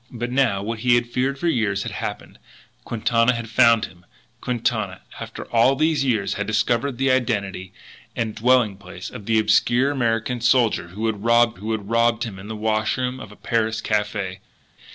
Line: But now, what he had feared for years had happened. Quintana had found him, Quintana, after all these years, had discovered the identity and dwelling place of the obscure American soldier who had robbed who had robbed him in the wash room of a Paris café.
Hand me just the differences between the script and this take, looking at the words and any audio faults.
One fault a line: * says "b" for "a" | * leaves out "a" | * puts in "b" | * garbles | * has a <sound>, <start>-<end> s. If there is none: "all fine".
all fine